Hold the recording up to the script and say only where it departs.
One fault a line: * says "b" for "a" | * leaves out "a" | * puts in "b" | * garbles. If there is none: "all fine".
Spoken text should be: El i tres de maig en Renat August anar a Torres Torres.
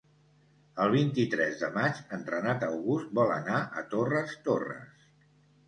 * puts in "vint"
* puts in "vol"